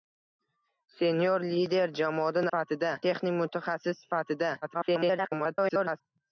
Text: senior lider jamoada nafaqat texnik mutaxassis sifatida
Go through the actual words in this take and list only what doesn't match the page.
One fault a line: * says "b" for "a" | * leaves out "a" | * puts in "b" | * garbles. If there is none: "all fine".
* says "sifatida" for "nafaqat"
* garbles